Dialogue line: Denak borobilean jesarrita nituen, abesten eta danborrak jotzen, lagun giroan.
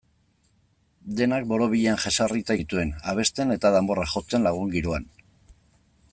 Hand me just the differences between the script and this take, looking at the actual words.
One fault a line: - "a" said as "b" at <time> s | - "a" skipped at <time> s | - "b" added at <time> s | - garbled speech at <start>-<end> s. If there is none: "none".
none